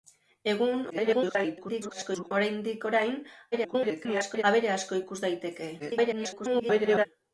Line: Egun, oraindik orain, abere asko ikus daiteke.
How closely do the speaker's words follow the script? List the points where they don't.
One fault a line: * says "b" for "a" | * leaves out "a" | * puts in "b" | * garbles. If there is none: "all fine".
* garbles
* garbles
* garbles